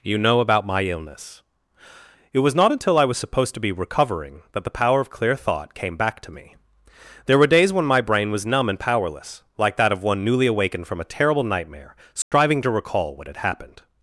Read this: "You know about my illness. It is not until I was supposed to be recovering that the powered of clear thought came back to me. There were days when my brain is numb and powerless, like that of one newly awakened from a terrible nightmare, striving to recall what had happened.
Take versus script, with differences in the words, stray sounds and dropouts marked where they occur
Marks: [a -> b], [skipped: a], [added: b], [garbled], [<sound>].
"You know about my illness. It [is -> was] not until I was supposed to be recovering that the [powered -> power] of clear thought came back to me. There were days when my brain [is -> was] numb and powerless, like that of one newly awakened from a terrible nightmare, striving [dropout] to recall what had happened.